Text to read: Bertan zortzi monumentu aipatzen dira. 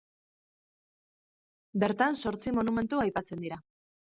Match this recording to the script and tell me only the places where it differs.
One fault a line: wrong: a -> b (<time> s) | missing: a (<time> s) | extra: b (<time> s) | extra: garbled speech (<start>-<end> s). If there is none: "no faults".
no faults